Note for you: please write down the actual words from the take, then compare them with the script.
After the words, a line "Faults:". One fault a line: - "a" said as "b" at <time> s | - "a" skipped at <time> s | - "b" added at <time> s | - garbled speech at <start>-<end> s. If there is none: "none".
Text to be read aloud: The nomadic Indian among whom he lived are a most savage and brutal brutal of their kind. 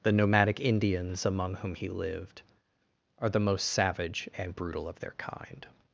The nomadic Indians among whom he lived are the most savage and brutal of their kind.
Faults:
- "Indian" said as "Indians" at 0.6 s
- "a" said as "the" at 3.3 s
- "brutal" skipped at 4.9 s